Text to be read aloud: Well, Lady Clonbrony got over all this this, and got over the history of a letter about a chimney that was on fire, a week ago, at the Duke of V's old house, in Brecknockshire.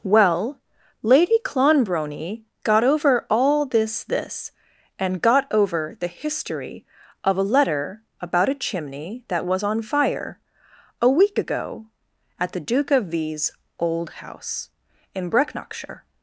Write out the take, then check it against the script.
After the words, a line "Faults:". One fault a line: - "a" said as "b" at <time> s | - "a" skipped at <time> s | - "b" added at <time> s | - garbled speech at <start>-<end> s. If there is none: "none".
Well, Lady Clonbrony got over all this this, and got over the history of a letter about a chimney that was on fire, a week ago, at the Duke of V's old house, in Brecknockshire.
Faults:
none